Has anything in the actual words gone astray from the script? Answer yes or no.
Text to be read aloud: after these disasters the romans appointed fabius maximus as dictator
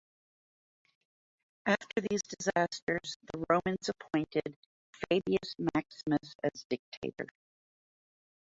no